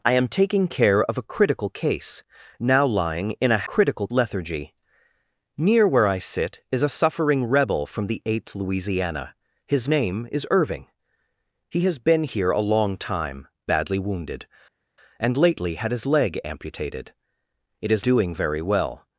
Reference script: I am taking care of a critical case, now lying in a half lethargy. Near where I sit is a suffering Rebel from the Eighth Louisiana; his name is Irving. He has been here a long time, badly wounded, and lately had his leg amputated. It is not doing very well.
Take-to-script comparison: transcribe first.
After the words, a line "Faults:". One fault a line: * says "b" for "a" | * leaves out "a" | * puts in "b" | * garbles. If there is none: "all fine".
I am taking care of a critical case, now lying in a critical lethargy. Near where I sit is a suffering Rebel from the Eighth Louisiana; his name is Irving. He has been here a long time, badly wounded, and lately had his leg amputated. It is doing very well.
Faults:
* says "critical" for "half"
* leaves out "not"